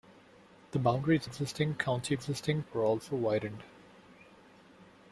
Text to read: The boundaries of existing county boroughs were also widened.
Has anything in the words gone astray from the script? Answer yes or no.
yes